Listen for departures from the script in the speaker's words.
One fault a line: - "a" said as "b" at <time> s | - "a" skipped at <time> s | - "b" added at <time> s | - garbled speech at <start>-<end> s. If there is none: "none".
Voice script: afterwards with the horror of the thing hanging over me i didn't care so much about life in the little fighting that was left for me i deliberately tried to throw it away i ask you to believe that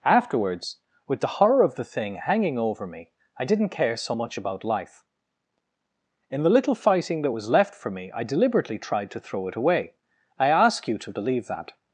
none